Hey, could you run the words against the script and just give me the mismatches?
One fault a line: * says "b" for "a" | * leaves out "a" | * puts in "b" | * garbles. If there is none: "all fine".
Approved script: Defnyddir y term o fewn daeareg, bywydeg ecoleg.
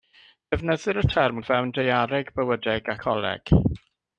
all fine